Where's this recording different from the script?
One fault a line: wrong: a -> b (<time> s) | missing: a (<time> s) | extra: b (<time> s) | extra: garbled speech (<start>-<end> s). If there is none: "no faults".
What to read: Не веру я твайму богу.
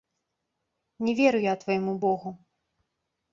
no faults